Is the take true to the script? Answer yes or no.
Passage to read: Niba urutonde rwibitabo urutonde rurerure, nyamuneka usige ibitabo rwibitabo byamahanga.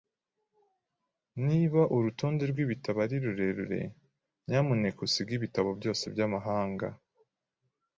no